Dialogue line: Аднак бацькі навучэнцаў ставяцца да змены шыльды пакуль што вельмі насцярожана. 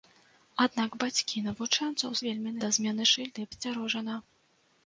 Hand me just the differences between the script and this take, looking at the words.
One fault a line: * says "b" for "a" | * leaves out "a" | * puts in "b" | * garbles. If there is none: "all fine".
* says "вельмі" for "ставяцца"
* leaves out "пакуль што вельмі"